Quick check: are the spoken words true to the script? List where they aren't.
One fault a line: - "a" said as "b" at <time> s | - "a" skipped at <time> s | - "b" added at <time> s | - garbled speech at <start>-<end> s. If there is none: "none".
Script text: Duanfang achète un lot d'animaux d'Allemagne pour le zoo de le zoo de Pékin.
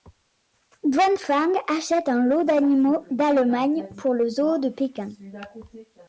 - "le zoo de" skipped at 4.7 s